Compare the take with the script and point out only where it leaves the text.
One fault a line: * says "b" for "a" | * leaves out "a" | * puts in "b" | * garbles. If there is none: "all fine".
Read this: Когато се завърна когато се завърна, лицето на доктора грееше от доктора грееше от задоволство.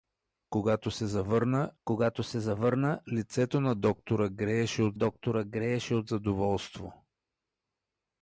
all fine